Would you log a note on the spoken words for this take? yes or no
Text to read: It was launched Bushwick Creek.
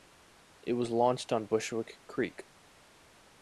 yes